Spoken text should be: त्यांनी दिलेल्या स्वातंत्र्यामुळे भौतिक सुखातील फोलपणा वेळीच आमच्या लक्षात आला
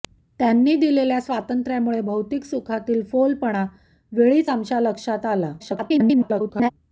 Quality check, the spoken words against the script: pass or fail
fail